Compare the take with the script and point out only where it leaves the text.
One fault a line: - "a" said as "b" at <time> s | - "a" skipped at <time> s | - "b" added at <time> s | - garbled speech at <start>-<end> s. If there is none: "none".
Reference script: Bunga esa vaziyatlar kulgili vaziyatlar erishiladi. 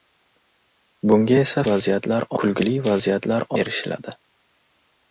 none